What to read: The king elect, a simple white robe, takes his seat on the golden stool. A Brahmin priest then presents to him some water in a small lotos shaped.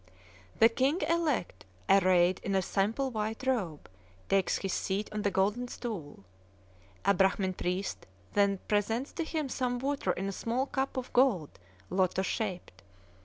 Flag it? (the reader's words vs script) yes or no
yes